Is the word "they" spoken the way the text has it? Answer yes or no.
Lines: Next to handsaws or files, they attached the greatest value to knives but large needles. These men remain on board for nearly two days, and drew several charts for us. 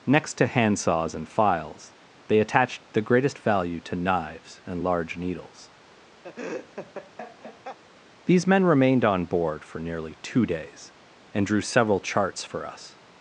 yes